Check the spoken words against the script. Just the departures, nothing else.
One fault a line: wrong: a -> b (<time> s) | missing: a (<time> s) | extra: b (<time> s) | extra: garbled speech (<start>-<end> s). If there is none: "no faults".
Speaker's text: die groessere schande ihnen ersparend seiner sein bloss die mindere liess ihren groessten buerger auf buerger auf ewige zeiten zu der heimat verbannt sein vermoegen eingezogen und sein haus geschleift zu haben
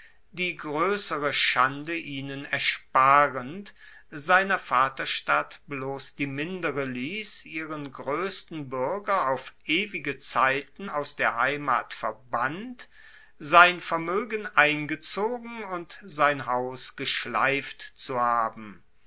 wrong: sein -> vaterstadt (4.6 s)
missing: buerger auf (9.5 s)
wrong: zu -> aus (10.9 s)